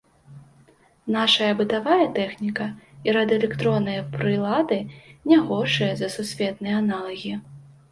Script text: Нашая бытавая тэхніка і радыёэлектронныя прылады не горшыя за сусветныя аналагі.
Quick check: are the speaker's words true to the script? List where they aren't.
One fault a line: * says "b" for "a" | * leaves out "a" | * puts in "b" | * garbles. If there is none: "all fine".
all fine